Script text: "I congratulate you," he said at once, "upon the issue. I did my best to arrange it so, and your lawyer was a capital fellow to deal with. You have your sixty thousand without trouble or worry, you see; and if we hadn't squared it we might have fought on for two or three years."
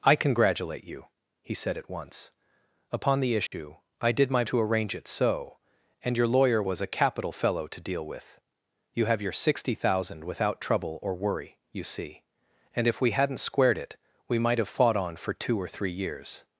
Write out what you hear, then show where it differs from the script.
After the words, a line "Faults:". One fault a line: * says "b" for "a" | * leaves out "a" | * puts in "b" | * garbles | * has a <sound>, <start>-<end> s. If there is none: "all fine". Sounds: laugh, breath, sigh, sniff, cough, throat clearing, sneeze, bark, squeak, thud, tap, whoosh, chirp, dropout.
"I congratulate you," he said at once, "upon the issue. I did my to arrange it so, and your lawyer was a capital fellow to deal with. You have your sixty thousand without trouble or worry, you see; and if we hadn't squared it we might have fought on for two or three years."
Faults:
* has a dropout, 3.5-3.5 s
* leaves out "best"